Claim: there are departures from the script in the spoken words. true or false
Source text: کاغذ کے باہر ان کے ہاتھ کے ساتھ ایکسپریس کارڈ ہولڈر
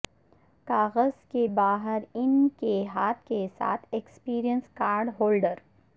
false